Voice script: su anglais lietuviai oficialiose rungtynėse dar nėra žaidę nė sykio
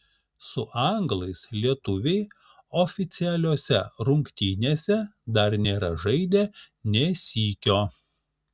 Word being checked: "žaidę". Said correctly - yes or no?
yes